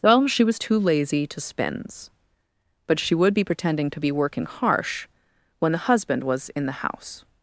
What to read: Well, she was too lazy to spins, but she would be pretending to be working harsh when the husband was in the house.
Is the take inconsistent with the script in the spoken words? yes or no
no